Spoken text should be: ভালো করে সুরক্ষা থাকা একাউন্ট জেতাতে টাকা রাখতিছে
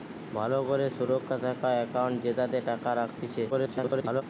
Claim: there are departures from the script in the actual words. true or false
true